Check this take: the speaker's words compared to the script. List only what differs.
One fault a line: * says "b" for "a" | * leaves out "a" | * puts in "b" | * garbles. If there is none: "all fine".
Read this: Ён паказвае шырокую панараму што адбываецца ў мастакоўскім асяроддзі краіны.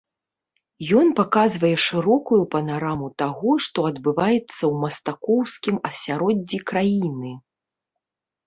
* puts in "таго"